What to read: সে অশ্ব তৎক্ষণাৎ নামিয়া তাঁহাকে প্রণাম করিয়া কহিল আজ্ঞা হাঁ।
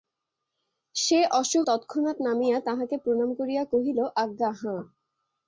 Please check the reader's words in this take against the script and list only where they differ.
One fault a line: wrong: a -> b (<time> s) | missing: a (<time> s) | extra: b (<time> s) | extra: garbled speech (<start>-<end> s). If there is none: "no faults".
no faults